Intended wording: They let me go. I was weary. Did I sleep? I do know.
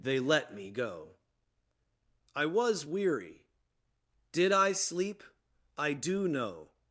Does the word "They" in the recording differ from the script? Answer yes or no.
no